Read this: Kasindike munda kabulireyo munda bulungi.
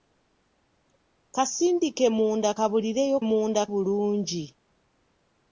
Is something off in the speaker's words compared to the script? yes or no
no